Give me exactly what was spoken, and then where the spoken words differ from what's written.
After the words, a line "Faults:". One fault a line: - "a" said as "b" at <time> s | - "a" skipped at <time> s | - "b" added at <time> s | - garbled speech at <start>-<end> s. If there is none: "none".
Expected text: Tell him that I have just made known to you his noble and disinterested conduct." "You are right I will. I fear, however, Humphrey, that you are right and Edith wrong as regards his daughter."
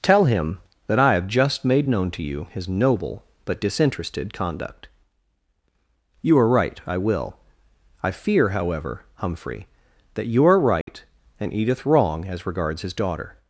Tell him that I have just made known to you his noble but disinterested conduct." "You are right I will. I fear, however, Humphrey, that you are right and Edith wrong as regards his daughter."
Faults:
- "and" said as "but" at 3.5 s